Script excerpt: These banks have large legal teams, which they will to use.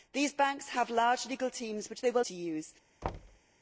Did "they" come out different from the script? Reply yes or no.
no